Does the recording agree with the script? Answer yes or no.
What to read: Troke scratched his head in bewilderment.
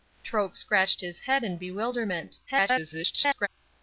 no